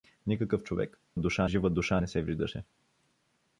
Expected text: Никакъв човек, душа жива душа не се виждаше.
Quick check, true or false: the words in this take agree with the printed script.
true